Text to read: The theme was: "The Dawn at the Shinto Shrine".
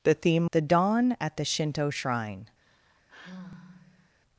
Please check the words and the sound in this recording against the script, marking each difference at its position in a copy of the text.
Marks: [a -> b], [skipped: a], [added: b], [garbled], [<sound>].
The theme [skipped: was:] "The Dawn at the Shinto Shrine". [sigh]